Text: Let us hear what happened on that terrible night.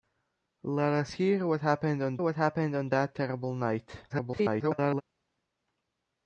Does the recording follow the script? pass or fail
fail